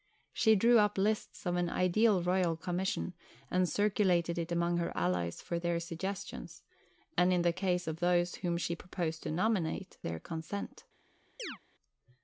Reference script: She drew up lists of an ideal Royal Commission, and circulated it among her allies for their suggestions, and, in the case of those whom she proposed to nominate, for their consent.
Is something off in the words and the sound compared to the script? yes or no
yes